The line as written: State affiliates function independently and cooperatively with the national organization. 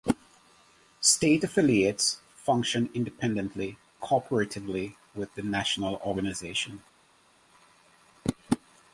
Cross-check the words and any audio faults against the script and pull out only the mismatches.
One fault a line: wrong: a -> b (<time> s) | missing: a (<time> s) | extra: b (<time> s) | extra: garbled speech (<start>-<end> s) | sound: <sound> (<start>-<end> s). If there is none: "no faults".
missing: and (3.8 s)